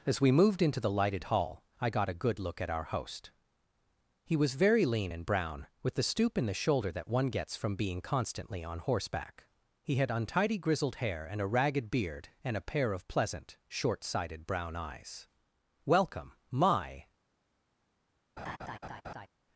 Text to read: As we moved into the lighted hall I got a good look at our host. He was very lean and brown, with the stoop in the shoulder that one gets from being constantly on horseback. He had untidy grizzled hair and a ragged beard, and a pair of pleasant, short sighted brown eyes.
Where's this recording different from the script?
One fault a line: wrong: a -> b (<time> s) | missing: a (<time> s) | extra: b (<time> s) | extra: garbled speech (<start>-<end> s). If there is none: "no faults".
extra: Welcome my (15.9 s)